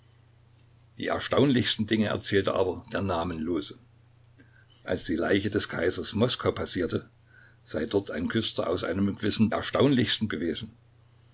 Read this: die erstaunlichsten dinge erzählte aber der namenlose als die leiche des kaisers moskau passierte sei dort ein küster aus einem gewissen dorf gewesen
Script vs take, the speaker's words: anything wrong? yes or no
yes